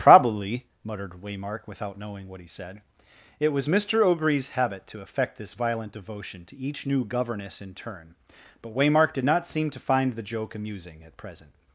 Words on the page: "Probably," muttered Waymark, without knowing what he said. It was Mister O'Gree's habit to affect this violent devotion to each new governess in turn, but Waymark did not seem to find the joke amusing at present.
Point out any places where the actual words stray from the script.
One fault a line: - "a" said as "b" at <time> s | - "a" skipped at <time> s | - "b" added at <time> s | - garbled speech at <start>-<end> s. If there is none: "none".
none